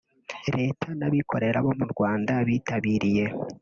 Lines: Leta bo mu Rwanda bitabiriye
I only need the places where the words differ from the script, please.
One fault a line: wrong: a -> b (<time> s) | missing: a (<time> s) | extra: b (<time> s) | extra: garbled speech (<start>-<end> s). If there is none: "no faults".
extra: n'abikorera (1.0 s)